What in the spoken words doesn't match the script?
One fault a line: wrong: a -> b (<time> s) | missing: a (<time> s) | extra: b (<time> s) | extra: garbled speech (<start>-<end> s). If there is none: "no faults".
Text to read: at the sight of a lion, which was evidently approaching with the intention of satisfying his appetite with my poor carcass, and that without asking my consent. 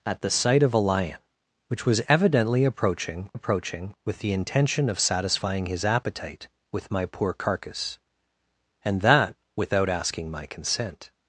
extra: approaching (3.3 s)